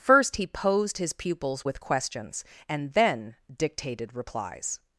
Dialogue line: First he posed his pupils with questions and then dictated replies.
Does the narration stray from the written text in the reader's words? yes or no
no